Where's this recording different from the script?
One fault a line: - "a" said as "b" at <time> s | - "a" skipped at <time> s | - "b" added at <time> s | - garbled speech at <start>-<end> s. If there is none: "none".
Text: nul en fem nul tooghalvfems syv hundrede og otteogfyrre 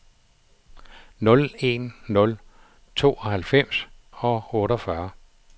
- "fem" skipped at 1.9 s
- "syv hundrede" skipped at 3.9 s